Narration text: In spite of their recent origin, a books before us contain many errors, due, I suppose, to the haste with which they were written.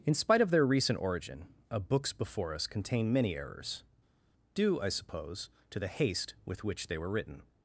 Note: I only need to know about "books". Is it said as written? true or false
true